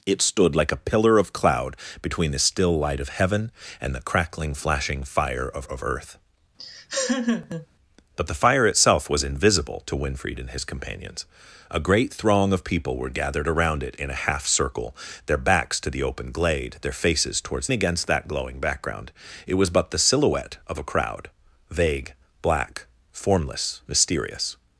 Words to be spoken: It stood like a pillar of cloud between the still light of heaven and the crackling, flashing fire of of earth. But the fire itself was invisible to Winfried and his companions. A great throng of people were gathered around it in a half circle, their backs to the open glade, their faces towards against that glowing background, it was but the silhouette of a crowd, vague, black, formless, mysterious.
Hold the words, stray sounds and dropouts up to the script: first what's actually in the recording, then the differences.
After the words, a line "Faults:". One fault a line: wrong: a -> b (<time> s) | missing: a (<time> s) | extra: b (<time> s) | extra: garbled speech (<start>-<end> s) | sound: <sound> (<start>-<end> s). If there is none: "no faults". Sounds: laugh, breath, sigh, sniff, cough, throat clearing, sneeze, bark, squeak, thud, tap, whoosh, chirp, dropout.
It stood like a pillar of cloud between the still light of heaven and the crackling, flashing fire of of earth. But the fire itself was invisible to Winfried and his companions. A great throng of people were gathered around it in a half circle, their backs to the open glade, their faces towards against that glowing background, it was but the silhouette of a crowd, vague, black, formless, mysterious.
Faults:
sound: laugh (6.6-7.7 s)